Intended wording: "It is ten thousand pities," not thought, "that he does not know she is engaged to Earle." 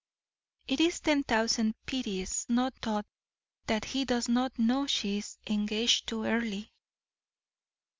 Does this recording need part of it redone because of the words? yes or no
no